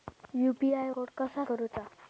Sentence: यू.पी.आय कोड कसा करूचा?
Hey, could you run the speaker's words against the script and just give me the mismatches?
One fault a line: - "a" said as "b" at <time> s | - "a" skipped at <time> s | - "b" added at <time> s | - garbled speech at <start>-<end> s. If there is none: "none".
none